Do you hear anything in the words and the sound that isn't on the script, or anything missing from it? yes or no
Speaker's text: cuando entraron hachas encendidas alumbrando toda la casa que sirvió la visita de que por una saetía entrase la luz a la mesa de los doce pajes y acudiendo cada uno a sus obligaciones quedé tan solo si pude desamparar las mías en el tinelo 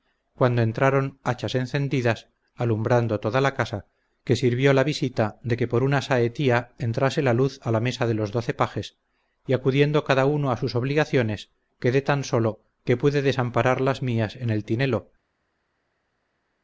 yes